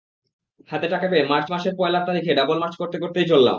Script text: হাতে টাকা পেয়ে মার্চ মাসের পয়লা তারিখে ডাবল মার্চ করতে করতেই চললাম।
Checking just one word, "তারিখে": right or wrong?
right